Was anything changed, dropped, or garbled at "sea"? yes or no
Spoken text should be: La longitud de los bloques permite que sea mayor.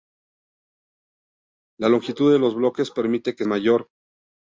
yes